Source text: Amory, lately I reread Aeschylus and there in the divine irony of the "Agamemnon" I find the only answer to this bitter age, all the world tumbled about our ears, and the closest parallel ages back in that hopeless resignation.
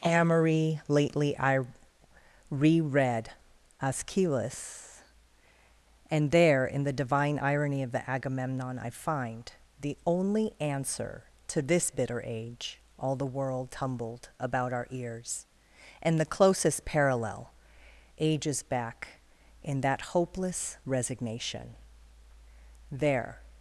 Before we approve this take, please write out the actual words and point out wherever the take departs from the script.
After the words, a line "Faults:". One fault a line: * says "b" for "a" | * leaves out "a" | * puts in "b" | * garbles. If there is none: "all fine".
Amory, lately I reread Aeschylus and there in the divine irony of the "Agamemnon" I find the only answer to this bitter age, all the world tumbled about our ears, and the closest parallel ages back in that hopeless resignation. There
Faults:
* puts in "There"